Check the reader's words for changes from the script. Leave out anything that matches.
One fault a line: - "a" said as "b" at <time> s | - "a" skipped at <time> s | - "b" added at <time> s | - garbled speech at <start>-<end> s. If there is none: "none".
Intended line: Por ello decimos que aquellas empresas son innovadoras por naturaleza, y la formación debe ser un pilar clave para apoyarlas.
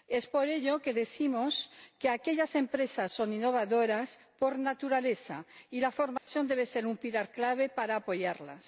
none